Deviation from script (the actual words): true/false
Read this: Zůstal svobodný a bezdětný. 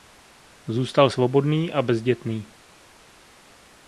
false